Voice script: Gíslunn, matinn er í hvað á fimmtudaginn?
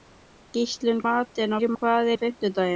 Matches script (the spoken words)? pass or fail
pass